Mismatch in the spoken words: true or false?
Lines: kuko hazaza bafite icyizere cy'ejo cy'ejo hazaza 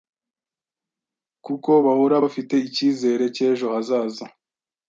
true